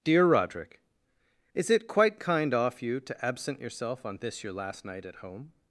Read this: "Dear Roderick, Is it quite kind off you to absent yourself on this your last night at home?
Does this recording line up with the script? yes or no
yes